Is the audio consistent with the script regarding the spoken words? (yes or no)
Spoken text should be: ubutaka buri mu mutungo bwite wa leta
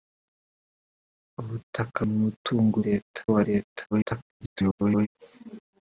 no